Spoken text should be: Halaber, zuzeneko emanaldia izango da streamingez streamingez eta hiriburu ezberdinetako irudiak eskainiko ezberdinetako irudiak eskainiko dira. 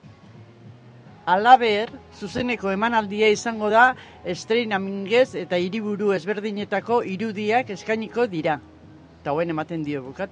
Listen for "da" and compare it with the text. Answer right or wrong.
right